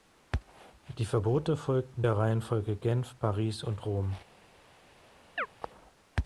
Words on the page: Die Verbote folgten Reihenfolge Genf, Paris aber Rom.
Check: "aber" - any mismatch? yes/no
yes